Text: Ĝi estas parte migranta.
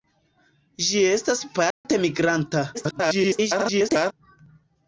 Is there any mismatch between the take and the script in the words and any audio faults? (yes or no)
yes